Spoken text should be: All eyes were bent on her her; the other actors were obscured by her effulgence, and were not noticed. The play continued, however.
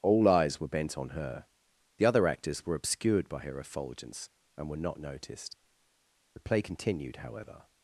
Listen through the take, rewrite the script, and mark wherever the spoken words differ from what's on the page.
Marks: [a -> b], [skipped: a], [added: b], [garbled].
All eyes were bent on her [skipped: her;] the other actors were obscured by her effulgence, and were not noticed. The play continued, however.